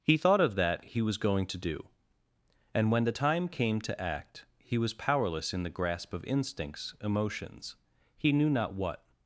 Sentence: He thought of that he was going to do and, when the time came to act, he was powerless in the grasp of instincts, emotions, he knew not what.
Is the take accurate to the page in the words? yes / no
yes